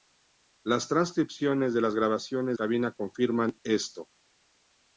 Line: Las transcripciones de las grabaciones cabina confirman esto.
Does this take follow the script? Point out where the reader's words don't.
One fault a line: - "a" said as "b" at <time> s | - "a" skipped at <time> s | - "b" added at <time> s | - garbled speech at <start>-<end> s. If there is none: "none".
none